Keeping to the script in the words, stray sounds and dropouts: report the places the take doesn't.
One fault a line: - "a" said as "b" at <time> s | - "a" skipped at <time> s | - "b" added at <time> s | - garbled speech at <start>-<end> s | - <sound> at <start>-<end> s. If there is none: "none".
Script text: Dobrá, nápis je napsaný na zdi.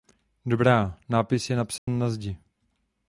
- dropout at 1.8-1.9 s